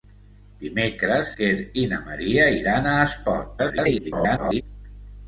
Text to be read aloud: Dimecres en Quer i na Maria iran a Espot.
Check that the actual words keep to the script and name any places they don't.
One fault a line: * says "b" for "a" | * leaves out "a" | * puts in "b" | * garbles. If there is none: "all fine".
* leaves out "en"
* garbles